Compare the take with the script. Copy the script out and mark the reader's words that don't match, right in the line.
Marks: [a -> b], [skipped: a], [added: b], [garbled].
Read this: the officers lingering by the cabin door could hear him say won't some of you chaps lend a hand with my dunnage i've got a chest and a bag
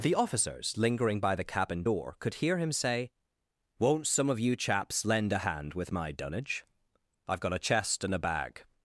the officers lingering by the cabin door could hear him say won't some of you chaps lend a hand with my dunnage i've got a chest and a bag